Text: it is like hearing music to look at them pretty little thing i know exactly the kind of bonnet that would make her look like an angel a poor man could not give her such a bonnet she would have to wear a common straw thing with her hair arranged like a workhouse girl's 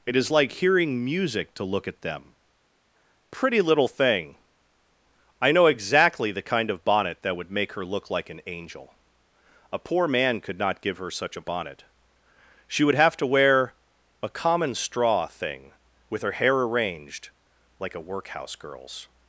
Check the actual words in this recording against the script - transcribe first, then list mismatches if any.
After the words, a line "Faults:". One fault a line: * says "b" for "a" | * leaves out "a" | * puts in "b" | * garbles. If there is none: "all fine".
it is like hearing music to look at them pretty little thing i know exactly the kind of bonnet that would make her look like an angel a poor man could not give her such a bonnet she would have to wear a common straw thing with her hair arranged like a workhouse girl's
Faults:
all fine